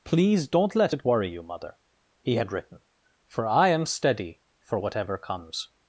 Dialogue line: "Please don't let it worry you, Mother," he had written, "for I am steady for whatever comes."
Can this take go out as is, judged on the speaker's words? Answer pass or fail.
pass